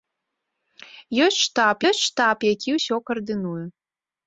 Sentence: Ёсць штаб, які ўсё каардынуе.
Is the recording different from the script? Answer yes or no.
yes